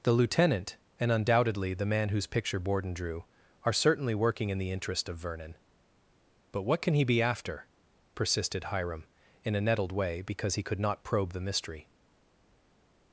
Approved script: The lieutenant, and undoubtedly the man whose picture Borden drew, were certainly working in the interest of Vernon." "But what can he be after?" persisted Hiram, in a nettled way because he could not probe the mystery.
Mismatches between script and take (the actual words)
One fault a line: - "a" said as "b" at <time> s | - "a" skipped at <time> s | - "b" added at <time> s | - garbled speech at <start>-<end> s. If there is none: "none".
- "were" said as "are" at 3.6 s